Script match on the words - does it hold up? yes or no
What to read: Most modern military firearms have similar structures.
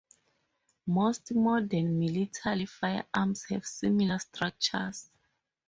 yes